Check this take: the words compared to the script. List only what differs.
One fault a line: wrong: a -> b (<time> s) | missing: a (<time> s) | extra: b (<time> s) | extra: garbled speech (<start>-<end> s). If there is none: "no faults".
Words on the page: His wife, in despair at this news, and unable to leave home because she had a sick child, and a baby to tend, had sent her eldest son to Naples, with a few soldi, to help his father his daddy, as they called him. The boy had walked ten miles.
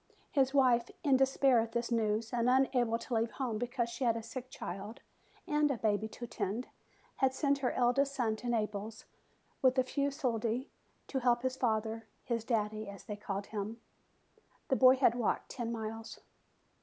no faults